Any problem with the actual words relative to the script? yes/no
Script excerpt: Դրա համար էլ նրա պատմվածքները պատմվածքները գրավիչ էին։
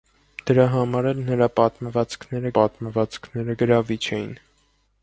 no